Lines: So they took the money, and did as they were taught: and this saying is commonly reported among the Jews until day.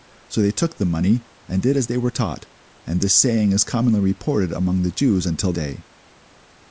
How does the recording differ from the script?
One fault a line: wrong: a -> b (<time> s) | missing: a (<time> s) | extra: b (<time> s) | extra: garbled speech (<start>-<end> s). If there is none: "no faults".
no faults